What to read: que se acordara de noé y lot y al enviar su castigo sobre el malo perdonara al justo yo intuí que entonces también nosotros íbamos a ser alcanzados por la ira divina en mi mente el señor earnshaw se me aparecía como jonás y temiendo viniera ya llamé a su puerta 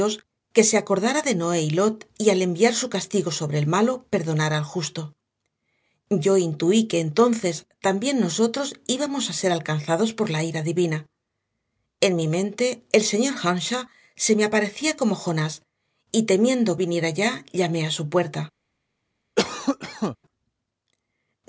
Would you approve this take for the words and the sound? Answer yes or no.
no